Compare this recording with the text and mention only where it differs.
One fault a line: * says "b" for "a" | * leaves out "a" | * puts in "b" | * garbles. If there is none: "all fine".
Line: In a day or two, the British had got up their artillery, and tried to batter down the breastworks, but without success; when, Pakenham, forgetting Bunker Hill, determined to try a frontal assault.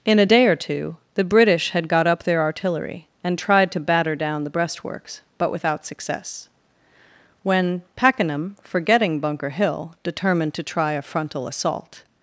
all fine